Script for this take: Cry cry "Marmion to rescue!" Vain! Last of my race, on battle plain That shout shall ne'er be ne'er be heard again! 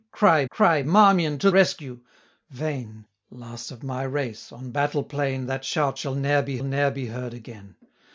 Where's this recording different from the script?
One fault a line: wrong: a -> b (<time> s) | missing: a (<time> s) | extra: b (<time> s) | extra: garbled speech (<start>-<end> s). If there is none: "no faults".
no faults